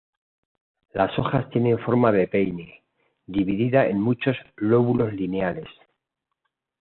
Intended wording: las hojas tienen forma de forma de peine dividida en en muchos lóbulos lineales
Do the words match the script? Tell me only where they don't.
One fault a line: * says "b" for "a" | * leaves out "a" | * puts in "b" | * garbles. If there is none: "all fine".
* leaves out "forma de"
* leaves out "en"